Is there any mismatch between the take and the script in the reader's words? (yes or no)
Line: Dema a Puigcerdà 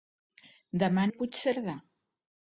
no